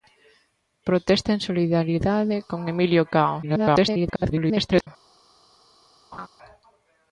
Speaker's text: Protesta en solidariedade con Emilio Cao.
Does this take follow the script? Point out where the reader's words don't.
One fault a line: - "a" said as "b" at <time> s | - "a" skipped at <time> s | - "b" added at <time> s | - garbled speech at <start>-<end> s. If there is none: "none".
- garbled speech at 3.4-4.9 s